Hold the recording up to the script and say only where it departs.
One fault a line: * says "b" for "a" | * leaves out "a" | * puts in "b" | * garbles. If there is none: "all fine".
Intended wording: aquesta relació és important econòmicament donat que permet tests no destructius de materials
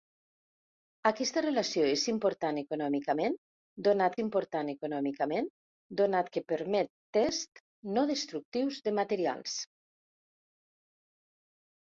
* puts in "important econòmicament donat"